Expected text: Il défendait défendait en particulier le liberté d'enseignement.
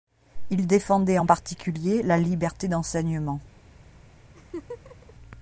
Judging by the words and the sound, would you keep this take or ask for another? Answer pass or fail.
fail